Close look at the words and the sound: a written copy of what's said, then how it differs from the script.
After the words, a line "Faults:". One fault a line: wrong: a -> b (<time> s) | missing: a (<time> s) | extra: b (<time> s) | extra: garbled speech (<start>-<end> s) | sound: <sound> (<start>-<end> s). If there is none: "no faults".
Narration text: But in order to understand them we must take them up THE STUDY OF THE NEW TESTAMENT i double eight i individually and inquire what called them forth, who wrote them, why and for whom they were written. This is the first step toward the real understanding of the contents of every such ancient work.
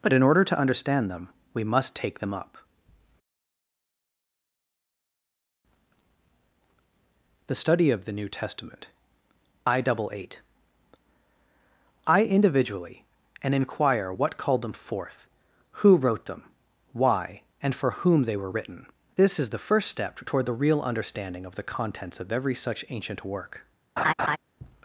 But in order to understand them we must take them up THE STUDY OF THE NEW TESTAMENT i double eight i individually and inquire what called them forth, who wrote them, why and for whom they were written. This is the first step toward the real understanding of the contents of every such ancient work.
Faults:
sound: laugh (24.0-24.4 s)